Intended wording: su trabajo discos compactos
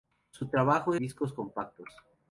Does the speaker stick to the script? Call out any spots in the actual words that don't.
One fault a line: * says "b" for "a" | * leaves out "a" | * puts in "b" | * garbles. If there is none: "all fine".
all fine